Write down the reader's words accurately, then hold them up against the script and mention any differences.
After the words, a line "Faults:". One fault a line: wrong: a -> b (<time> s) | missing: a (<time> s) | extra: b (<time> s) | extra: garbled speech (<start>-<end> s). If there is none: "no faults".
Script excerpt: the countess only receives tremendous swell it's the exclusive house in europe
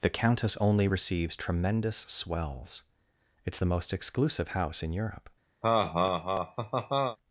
the countess only receives tremendous swells it's the most exclusive house in europe
Faults:
wrong: swell -> swells (2.1 s)
extra: most (3.7 s)